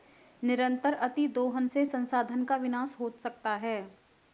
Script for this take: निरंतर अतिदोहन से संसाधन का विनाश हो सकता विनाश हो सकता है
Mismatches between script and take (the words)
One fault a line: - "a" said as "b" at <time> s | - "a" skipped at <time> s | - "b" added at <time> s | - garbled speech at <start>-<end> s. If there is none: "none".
- "विनाश हो सकता" skipped at 3.6 s